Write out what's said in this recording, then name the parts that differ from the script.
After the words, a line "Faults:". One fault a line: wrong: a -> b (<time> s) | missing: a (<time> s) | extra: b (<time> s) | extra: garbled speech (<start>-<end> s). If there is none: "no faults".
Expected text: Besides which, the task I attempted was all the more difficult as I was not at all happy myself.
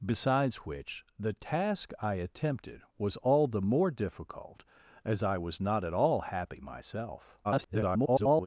Besides which, the task I attempted was all the more difficult as I was not at all happy myself. [garbled]
Faults:
extra: garbled speech (7.4-8.5 s)